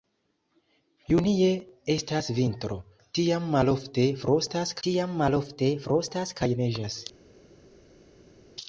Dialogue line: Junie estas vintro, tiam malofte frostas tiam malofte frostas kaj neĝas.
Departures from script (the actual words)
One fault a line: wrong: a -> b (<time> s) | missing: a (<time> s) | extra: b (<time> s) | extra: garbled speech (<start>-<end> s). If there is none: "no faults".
no faults